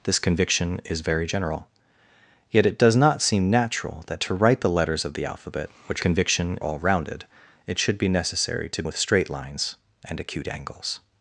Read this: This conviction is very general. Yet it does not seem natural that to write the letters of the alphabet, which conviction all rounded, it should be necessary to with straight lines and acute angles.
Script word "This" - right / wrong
right